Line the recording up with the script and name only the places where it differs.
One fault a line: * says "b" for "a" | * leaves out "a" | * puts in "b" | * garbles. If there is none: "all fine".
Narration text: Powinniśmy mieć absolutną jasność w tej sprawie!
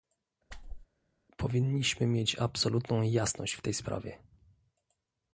all fine